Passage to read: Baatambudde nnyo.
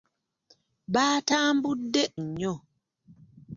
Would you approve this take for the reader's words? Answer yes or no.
yes